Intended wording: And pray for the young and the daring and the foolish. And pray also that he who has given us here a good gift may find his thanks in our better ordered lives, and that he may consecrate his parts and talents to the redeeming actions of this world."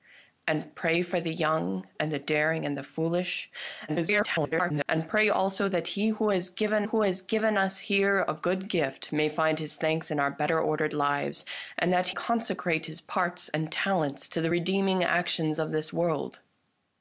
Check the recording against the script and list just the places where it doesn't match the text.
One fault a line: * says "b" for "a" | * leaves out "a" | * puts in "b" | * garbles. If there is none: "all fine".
* garbles
* puts in "who has given"
* leaves out "may"